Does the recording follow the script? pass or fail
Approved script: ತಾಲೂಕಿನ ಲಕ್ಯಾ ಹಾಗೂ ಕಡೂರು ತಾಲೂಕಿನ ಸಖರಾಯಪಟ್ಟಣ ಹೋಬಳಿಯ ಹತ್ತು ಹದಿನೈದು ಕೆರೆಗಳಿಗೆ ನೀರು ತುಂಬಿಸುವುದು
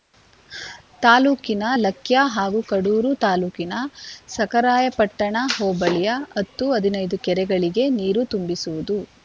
pass